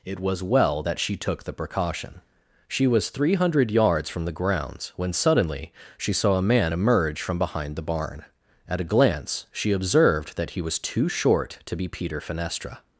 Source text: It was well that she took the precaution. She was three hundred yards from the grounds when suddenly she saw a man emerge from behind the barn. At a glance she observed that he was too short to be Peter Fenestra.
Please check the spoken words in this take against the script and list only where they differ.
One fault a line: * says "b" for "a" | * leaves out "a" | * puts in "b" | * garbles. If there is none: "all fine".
all fine